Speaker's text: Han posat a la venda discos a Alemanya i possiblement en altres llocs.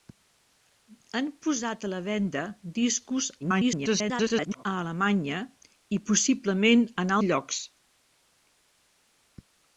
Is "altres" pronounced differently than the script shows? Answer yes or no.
yes